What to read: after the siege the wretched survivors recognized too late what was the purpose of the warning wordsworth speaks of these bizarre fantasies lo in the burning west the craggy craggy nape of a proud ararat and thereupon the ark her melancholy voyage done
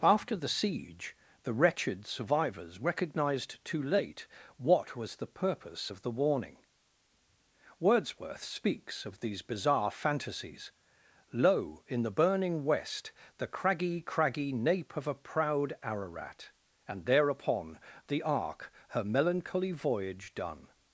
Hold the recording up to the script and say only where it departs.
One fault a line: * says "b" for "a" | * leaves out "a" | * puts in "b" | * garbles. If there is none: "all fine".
all fine